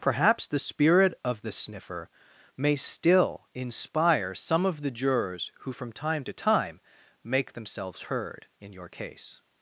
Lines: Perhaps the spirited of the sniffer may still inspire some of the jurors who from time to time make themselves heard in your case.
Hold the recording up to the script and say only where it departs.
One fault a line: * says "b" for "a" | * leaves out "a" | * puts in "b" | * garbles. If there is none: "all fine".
* says "spirit" for "spirited"